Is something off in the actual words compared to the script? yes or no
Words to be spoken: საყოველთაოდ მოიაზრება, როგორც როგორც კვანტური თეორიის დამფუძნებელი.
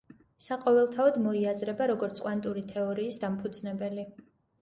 yes